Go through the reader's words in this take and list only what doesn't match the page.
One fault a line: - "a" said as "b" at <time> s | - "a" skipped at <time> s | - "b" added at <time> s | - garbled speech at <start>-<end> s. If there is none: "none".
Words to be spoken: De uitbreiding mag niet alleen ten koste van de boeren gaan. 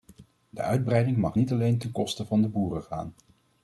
none